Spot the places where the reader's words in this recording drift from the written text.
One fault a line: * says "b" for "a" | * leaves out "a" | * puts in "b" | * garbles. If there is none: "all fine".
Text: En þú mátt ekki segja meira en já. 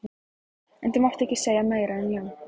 all fine